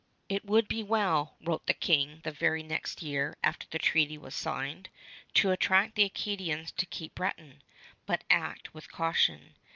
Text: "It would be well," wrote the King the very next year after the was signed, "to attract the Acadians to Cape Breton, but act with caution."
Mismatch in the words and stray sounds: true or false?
true